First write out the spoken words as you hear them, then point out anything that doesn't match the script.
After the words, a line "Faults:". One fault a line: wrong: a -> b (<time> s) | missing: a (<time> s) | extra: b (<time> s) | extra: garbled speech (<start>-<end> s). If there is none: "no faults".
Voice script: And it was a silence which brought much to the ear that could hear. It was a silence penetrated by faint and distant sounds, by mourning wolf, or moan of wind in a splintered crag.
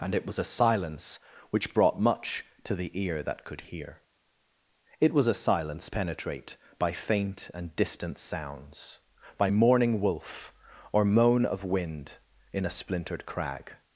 And it was a silence which brought much to the ear that could hear. It was a silence penetrate by faint and distant sounds, by mourning wolf, or moan of wind in a splintered crag.
Faults:
wrong: penetrated -> penetrate (5.9 s)